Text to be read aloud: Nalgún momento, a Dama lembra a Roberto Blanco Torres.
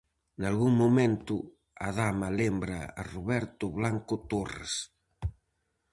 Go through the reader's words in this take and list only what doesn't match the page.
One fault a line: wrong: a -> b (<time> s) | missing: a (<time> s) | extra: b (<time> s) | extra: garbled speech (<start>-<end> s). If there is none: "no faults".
no faults